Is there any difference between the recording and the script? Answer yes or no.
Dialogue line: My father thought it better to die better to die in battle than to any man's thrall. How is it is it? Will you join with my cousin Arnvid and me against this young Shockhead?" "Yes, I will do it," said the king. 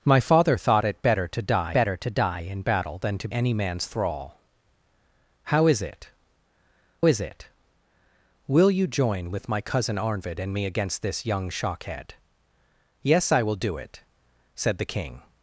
no